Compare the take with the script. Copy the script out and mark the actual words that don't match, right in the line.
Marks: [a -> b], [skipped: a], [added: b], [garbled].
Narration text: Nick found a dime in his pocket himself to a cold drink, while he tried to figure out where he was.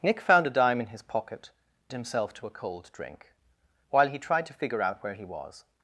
Nick found a dime in his pocket himself to a cold drink, while he tried to figure out where he was.